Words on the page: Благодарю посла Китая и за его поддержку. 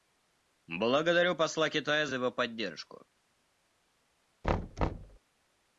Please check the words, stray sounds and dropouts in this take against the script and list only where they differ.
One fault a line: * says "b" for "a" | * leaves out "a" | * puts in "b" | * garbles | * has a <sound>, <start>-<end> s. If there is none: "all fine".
* has a thud, 4.4-5.2 s